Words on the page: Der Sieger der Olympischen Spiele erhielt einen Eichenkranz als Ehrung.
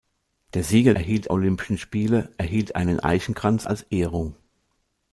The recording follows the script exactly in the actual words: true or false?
false